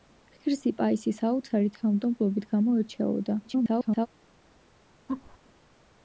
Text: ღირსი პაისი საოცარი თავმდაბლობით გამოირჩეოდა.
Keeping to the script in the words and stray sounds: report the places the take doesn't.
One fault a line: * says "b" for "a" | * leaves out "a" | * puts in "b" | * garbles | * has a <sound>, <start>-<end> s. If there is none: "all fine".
* garbles
* has a laugh, 5.1-5.4 s